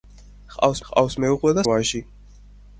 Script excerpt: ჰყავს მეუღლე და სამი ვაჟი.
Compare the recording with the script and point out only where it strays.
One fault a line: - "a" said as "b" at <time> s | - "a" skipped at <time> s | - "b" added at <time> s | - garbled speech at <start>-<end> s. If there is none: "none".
- "ჰყავს" added at 0.9 s
- "სამი" skipped at 1.7 s